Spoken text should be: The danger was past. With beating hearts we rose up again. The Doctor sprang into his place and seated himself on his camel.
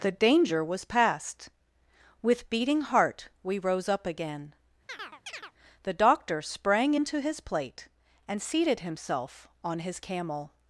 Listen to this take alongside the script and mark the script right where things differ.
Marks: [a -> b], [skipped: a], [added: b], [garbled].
The danger was past. With beating [hearts -> heart] we rose up again. The Doctor sprang into his [place -> plate] and seated himself on his camel.